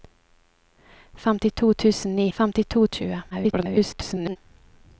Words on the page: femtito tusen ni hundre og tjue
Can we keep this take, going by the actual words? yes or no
no